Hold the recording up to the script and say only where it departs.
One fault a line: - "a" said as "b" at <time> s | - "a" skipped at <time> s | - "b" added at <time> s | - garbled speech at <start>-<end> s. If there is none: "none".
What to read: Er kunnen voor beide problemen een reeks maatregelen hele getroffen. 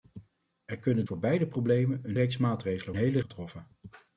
none